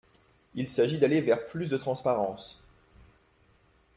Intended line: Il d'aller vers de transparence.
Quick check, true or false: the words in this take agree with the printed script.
false